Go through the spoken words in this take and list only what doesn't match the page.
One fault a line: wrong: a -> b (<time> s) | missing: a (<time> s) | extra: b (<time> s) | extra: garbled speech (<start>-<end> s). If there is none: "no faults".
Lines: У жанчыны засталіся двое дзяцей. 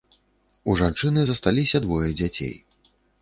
no faults